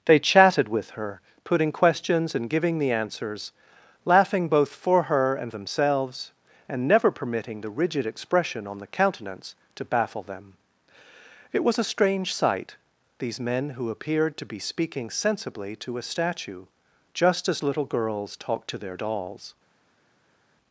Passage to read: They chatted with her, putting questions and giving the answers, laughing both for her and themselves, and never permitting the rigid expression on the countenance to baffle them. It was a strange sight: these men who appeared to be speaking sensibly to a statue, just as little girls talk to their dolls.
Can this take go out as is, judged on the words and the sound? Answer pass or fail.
pass